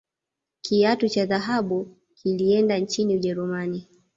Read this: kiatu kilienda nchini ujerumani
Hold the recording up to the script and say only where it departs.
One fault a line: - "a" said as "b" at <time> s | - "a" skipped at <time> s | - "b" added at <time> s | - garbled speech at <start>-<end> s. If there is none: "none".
- "cha dhahabu" added at 1.1 s